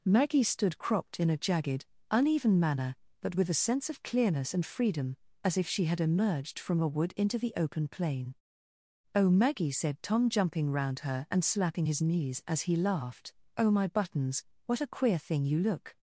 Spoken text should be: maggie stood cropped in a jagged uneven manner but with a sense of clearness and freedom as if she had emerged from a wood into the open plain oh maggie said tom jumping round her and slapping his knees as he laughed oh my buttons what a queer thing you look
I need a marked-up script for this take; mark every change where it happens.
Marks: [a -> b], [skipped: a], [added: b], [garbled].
maggie stood cropped in a jagged uneven manner but with a sense of clearness and freedom as if she had emerged from a wood into the open plain oh maggie said tom jumping round her and slapping his knees as he laughed oh my buttons what a queer thing you look